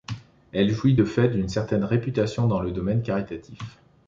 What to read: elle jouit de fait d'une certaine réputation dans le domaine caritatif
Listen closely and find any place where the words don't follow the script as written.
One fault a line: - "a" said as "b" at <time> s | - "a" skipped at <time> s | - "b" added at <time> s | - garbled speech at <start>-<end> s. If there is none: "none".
none